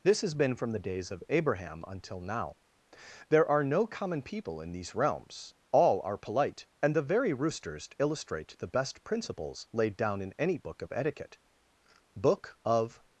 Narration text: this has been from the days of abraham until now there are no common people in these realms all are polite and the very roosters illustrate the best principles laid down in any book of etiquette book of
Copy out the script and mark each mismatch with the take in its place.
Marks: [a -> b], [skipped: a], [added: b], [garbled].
this has been from the days of abraham until now there are no common people in these realms all are polite and the very roosters illustrate the best principles laid down in any book of etiquette book of